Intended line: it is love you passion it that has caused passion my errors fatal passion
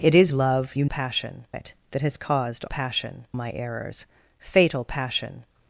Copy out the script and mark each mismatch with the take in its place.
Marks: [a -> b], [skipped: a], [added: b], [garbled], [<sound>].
it is love you passion it that has caused passion my errors fatal passion